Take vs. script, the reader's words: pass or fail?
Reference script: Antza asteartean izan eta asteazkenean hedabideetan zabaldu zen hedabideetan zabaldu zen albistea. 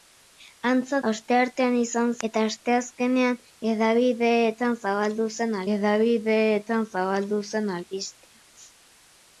pass